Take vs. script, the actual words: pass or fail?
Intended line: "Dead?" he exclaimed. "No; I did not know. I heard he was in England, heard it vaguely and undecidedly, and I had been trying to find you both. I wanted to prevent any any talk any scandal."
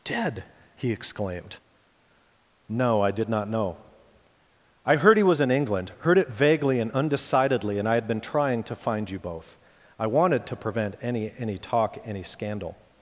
pass